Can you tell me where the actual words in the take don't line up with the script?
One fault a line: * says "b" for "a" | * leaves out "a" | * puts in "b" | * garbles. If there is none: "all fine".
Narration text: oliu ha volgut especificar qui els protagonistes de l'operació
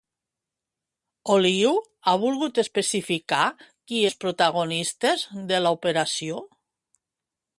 all fine